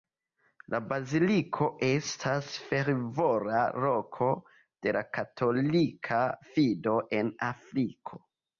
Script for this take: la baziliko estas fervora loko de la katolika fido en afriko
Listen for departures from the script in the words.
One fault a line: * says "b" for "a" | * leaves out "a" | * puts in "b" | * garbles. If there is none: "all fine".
all fine